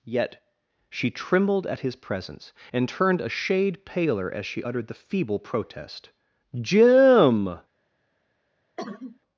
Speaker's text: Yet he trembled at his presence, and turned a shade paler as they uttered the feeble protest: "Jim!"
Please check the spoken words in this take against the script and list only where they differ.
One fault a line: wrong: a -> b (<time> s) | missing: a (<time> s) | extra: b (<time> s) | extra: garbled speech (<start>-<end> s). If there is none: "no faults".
wrong: he -> she (0.9 s)
wrong: they -> she (4.4 s)